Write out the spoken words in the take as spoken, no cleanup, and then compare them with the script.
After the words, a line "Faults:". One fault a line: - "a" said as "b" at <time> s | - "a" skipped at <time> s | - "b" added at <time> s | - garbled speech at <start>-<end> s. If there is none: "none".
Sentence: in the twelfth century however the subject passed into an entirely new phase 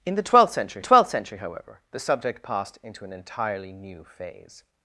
in the twelfth century twelfth century however the subject passed into an entirely new phase
Faults:
- "twelfth century" added at 0.8 s